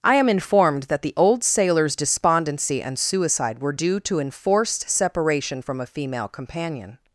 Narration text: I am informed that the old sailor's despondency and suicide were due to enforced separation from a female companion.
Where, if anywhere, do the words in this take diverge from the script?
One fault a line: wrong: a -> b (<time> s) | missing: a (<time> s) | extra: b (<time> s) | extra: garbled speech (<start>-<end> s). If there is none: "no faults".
no faults